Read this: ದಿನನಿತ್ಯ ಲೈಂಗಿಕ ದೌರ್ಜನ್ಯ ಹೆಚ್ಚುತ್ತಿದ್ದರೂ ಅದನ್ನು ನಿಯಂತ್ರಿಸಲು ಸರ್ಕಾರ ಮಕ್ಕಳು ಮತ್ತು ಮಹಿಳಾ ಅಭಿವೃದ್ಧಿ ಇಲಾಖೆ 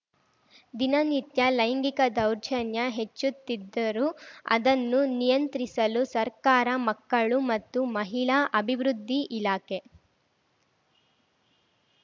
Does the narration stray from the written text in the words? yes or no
no